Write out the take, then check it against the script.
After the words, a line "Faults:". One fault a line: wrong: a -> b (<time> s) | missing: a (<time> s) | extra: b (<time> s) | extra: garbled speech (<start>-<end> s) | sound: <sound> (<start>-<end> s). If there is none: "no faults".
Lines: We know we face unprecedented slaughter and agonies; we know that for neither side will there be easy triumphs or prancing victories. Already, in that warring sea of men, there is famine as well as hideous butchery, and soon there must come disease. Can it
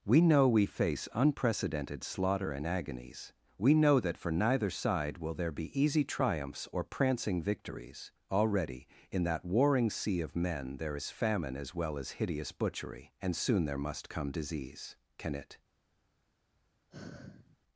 We know we face unprecedented slaughter and agonies; we know that for neither side will there be easy triumphs or prancing victories. Already, in that warring sea of men, there is famine as well as hideous butchery, and soon there must come disease. Can it
Faults:
sound: sigh (16.9-17.6 s)